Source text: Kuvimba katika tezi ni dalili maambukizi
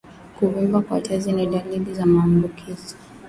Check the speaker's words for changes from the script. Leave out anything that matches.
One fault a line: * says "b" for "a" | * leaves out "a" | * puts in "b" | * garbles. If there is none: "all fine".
* says "kwa" for "katika"
* puts in "za"